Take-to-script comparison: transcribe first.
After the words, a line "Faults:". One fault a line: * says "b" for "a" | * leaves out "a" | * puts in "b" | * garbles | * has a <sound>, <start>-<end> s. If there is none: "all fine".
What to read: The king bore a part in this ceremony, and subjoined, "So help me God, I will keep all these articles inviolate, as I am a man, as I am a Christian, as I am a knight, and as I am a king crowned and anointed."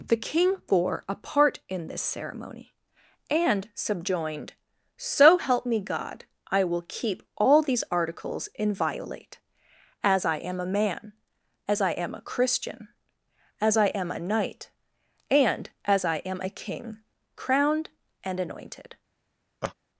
The king bore a part in this ceremony, and subjoined, "So help me God, I will keep all these articles inviolate, as I am a man, as I am a Christian, as I am a knight, and as I am a king crowned and anointed."
Faults:
* has a laugh, 19.6-19.7 s